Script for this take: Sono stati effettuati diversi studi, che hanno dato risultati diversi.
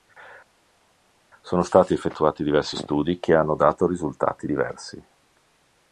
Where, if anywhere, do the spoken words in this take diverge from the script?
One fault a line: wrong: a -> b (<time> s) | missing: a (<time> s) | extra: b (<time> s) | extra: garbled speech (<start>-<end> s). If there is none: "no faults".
no faults